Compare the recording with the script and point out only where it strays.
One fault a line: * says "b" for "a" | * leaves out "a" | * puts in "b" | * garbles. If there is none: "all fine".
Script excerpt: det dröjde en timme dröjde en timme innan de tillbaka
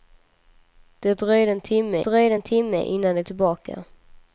all fine